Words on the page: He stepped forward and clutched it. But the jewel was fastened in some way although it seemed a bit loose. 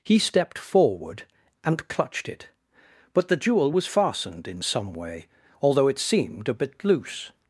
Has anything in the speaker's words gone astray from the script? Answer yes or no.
no